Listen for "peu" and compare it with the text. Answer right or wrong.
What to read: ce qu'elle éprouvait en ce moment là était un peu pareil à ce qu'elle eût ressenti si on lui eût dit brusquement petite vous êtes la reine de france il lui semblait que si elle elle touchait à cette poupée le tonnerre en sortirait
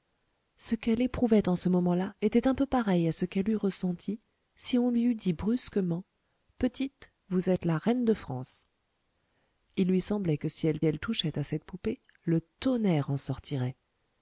right